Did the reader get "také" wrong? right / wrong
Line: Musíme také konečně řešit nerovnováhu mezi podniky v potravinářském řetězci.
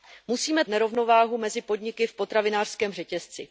wrong